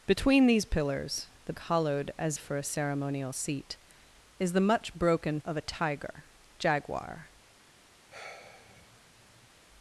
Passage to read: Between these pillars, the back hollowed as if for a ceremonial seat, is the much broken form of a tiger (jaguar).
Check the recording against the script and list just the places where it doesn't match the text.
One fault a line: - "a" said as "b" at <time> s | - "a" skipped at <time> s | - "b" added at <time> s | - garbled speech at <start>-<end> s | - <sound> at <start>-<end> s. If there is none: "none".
- "back" skipped at 1.5 s
- "if" skipped at 2.4 s
- "form" skipped at 5.4 s
- sigh at 8.1-9.5 s